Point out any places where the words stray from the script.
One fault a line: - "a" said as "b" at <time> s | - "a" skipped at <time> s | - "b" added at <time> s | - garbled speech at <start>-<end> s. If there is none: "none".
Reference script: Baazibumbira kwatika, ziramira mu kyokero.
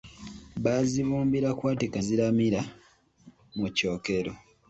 none